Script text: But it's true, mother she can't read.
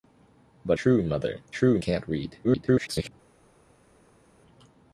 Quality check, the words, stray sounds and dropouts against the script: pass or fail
fail